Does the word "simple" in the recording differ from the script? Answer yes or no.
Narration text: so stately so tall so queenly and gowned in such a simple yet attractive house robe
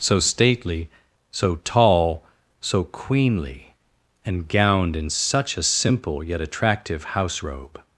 no